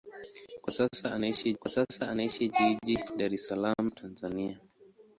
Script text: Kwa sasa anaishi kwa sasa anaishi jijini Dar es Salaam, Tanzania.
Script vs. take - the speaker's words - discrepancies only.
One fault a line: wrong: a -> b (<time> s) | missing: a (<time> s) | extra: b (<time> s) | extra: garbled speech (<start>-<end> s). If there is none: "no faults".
no faults